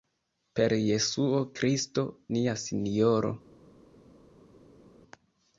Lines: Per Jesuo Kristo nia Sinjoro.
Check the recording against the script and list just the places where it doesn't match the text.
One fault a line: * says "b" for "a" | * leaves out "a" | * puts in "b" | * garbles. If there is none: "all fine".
all fine